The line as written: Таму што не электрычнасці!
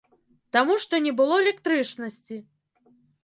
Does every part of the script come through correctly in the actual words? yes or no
no